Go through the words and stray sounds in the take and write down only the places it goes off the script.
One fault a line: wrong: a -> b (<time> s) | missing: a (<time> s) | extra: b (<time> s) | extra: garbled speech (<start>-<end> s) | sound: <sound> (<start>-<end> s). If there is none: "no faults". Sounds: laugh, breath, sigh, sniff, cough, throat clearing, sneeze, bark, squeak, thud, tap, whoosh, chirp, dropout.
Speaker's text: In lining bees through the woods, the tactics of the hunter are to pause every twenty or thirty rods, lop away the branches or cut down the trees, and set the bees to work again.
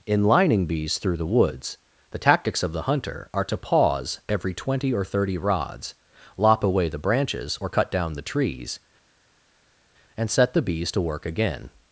no faults